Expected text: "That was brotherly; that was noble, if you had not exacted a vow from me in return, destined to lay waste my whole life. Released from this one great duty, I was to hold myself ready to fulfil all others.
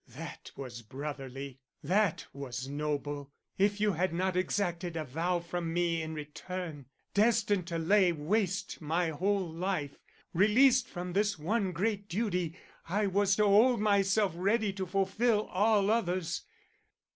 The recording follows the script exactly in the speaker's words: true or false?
true